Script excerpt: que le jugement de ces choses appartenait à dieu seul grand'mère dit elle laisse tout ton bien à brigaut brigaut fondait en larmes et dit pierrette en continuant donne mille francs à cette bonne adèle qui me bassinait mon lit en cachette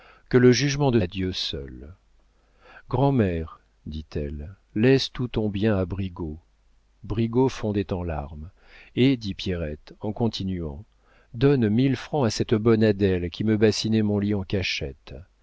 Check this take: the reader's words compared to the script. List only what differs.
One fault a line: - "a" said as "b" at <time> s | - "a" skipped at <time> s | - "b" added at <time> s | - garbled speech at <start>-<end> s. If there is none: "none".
- "ces choses appartenait" skipped at 1.0 s